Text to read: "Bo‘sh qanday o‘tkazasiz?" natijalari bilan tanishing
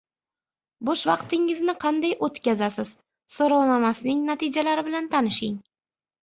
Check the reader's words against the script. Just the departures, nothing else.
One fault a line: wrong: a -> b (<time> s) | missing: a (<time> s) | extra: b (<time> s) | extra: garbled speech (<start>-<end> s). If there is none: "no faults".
extra: vaqtingizni (1.1 s)
extra: so‘rovnomasining (3.4 s)